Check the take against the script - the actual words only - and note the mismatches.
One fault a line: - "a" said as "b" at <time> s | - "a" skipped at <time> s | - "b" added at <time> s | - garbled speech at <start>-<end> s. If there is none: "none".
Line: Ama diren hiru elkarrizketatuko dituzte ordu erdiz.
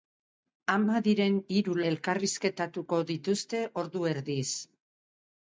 none